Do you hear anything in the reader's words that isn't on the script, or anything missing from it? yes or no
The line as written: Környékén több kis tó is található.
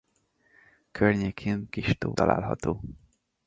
yes